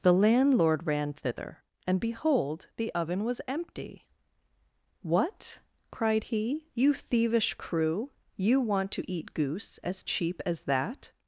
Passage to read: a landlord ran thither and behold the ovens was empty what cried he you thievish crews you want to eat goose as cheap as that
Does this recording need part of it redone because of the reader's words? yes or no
yes